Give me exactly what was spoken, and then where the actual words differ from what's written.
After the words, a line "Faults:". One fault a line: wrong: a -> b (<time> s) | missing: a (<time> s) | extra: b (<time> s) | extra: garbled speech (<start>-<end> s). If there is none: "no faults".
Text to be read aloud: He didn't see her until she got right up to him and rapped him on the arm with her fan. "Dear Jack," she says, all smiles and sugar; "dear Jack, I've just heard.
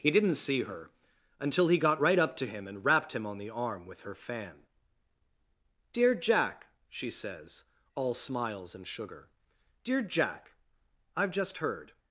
He didn't see her until he got right up to him and rapped him on the arm with her fan. "Dear Jack," she says, all smiles and sugar; "dear Jack, I've just heard.
Faults:
wrong: she -> he (1.7 s)